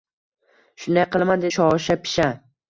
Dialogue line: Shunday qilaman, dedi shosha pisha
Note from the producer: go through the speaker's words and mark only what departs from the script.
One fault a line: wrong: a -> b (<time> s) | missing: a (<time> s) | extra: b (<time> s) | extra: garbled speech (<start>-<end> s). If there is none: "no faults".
missing: dedi (1.5 s)